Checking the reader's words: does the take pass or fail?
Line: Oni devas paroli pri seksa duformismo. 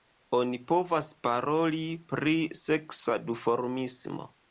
fail